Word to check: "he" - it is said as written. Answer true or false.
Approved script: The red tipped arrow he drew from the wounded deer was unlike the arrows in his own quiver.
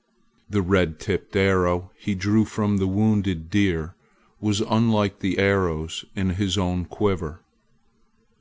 true